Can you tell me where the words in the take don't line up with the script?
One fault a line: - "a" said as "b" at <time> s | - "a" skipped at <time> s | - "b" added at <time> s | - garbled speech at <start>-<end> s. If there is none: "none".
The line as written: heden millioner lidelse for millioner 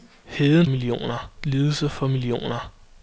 none